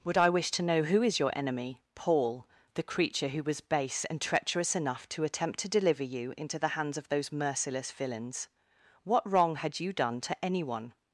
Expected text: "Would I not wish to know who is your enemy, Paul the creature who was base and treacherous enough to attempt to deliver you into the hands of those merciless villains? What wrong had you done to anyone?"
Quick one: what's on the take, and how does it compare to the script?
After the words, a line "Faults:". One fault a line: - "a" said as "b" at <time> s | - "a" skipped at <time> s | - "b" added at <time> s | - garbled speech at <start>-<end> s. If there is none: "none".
"Would I wish to know who is your enemy, Paul the creature who was base and treacherous enough to attempt to deliver you into the hands of those merciless villains? What wrong had you done to anyone?"
Faults:
- "not" skipped at 0.3 s